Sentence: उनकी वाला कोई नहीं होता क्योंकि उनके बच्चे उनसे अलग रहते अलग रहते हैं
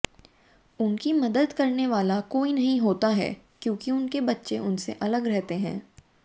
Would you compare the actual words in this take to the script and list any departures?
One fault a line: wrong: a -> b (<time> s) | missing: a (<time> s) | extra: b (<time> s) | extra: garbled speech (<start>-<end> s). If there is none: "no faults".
extra: मदद करने (1.1 s)
extra: है (3.1 s)
missing: अलग रहते (5.5 s)